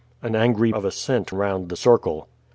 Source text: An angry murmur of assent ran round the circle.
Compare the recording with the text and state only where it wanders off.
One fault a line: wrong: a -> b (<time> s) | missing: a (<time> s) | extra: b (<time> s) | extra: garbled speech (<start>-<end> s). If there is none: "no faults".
missing: murmur (0.7 s)
missing: ran (1.3 s)